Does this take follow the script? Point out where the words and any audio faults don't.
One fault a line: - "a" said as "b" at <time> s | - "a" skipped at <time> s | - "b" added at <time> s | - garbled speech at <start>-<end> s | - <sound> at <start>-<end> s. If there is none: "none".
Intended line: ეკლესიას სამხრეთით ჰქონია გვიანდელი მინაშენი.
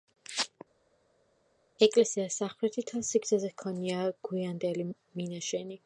- "მთელ სიგრძეზე" added at 2.9 s